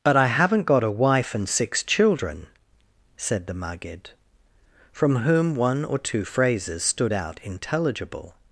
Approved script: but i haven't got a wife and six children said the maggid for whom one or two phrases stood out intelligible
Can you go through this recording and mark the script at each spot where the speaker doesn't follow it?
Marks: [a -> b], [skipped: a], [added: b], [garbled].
but i haven't got a wife and six children said the maggid [for -> from] whom one or two phrases stood out intelligible